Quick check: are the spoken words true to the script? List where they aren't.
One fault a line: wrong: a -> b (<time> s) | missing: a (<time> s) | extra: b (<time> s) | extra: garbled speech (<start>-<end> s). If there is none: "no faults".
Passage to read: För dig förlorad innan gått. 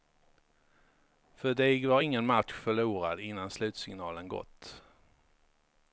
extra: var ingen match (1.9 s)
extra: slutsignalen (3.5 s)